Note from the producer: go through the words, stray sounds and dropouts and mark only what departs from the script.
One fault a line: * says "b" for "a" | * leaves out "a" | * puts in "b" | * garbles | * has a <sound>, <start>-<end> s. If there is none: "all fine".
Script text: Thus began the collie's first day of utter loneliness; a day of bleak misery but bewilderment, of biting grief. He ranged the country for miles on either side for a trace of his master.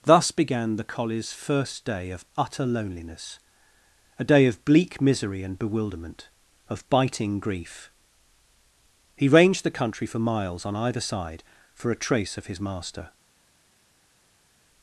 * says "and" for "but"